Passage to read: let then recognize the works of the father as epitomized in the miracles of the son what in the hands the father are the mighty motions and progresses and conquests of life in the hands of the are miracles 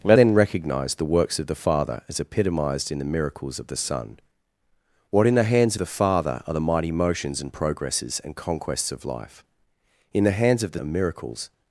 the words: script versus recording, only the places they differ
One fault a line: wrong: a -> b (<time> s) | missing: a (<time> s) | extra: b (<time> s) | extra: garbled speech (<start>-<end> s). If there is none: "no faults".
no faults